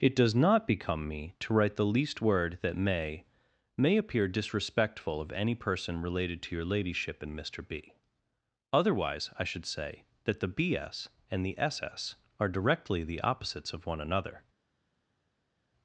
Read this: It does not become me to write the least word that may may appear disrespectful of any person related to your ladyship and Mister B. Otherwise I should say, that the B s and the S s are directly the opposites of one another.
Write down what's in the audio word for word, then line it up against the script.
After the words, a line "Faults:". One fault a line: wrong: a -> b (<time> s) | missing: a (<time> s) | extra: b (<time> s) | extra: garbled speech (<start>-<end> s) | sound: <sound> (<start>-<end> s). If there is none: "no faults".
It does not become me to write the least word that may may appear disrespectful of any person related to your ladyship and Mister B. Otherwise I should say, that the B s and the S s are directly the opposites of one another.
Faults:
no faults